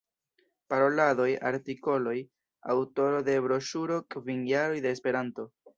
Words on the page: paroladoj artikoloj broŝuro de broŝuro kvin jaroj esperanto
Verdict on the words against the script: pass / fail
fail